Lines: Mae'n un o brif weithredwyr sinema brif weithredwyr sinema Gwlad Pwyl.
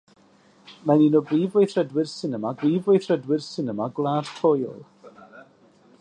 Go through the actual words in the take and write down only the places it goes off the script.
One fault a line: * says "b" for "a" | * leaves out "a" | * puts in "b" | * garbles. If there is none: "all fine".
all fine